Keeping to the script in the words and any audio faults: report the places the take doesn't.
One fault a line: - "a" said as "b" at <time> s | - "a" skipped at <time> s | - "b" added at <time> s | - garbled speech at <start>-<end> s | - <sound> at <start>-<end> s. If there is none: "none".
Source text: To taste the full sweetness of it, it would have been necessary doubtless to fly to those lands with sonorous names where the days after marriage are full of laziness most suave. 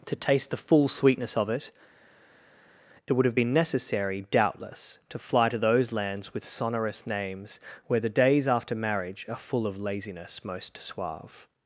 none